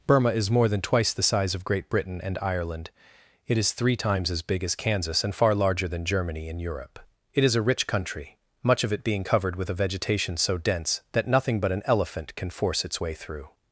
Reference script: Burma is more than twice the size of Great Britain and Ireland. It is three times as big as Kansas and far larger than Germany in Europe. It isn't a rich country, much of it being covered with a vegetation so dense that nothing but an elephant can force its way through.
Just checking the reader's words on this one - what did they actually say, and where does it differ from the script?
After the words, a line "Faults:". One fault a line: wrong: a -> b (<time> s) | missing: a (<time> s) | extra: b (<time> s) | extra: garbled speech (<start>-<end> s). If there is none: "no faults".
Burma is more than twice the size of Great Britain and Ireland. It is three times as big as Kansas and far larger than Germany in Europe. It is a rich country, much of it being covered with a vegetation so dense that nothing but an elephant can force its way through.
Faults:
wrong: isn't -> is (7.4 s)